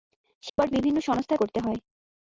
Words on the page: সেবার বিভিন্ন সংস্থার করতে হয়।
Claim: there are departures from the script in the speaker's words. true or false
false